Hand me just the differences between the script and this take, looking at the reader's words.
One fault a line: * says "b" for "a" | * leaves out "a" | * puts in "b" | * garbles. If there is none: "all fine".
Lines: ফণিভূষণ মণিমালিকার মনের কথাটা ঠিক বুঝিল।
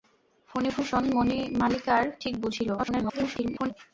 * leaves out "মনের কথাটা"
* garbles